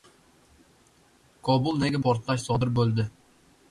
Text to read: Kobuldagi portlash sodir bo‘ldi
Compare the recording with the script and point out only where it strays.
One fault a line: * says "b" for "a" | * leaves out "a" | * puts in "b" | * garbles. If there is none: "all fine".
all fine